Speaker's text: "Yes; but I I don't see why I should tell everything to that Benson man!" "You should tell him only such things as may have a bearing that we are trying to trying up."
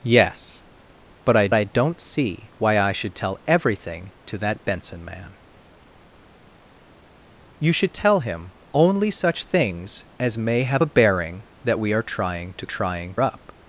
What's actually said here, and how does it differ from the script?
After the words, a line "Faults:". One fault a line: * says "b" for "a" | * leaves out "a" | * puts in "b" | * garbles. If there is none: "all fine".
"Yes; but I I don't see why I should tell everything to that Benson man!" "You should tell him only such things as may have a bearing that we are trying to trying up."
Faults:
all fine